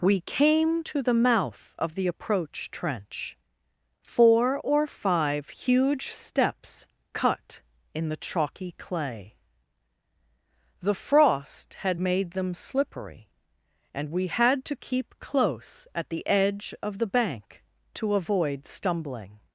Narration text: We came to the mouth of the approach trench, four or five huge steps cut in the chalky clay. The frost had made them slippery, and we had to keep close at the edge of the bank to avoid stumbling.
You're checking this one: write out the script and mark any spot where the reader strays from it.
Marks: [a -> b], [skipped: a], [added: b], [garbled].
We came to the mouth of the approach trench, four or five huge steps cut in the chalky clay. The frost had made them slippery, and we had to keep close at the edge of the bank to avoid stumbling.